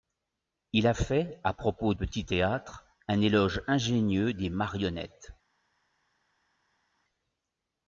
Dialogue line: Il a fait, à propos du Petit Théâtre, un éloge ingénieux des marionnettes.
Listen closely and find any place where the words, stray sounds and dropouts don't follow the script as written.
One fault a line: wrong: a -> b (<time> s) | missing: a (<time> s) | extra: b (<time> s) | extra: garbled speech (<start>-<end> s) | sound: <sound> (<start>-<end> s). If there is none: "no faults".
missing: du (1.9 s)